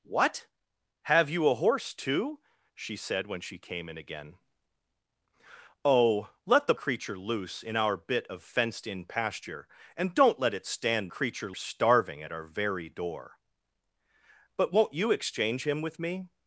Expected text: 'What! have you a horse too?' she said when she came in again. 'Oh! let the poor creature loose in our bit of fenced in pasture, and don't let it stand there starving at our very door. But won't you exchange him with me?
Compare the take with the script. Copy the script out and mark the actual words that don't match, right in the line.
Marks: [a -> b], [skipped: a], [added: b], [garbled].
'What! have you a horse too?' she said when she came in again. 'Oh! let the [skipped: poor] creature loose in our bit of fenced in pasture, and don't let it stand [there -> creature] starving at our very door. But won't you exchange him with me?